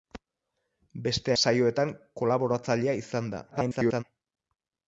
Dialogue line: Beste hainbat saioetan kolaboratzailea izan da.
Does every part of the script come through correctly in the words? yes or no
no